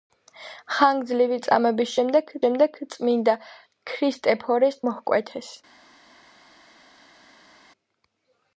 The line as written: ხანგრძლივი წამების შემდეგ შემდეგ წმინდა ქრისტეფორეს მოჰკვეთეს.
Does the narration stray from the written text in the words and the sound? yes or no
no